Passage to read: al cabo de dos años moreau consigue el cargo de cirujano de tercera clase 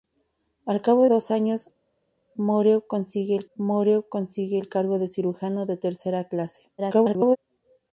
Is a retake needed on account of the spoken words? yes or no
yes